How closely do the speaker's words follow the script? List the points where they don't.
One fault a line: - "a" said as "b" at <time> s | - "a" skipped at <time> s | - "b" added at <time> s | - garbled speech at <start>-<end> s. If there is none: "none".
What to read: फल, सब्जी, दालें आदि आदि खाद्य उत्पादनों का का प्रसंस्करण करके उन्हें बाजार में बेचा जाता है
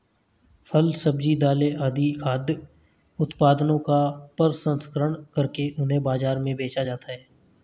- "आदि" skipped at 2.1 s
- "का" skipped at 4.0 s